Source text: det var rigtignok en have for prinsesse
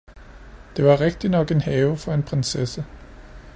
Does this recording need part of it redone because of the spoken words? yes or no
yes